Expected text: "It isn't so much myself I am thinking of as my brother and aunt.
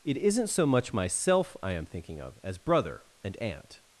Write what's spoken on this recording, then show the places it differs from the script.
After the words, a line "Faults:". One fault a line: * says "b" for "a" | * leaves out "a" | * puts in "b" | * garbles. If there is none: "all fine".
"It isn't so much myself I am thinking of as brother and aunt.
Faults:
* leaves out "my"